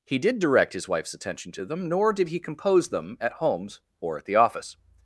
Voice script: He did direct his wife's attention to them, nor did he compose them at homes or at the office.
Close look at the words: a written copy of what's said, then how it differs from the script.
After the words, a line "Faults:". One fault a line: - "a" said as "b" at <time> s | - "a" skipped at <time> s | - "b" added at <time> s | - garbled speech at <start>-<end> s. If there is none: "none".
He did direct his wife's attention to them, nor did he compose them at homes or at the office.
Faults:
none